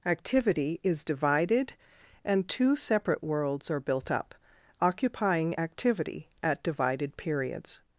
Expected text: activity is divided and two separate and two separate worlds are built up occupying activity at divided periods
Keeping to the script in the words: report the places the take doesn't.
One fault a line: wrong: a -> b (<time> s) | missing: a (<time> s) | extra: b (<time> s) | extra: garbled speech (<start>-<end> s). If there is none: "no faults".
missing: and two separate (3.2 s)